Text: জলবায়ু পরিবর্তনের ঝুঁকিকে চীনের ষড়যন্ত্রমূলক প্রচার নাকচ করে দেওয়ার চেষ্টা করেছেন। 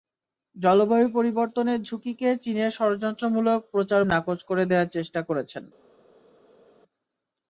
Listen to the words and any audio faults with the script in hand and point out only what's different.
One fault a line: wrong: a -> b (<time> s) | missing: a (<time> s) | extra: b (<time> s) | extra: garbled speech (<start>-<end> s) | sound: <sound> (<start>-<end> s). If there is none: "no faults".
no faults